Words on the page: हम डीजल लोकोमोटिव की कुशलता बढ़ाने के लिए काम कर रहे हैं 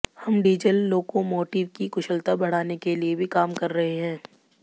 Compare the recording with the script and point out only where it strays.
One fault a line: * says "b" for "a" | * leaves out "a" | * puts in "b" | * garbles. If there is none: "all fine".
* puts in "भी"